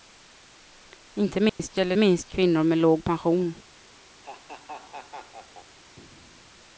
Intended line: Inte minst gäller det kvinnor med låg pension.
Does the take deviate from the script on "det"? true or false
true